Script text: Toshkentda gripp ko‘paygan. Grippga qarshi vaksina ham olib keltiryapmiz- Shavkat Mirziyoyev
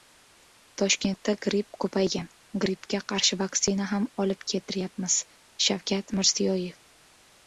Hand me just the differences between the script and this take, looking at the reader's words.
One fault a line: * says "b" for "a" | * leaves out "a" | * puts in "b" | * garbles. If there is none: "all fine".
all fine